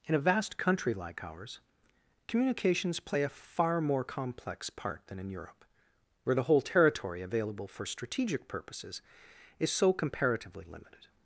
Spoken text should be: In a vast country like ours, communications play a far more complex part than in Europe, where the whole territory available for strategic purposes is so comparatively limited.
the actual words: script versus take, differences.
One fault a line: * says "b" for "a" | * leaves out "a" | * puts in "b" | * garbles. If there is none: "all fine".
all fine